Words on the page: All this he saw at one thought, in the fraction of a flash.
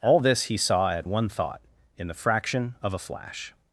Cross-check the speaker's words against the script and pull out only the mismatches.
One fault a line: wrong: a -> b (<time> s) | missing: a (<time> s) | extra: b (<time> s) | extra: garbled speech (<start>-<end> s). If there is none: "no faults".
no faults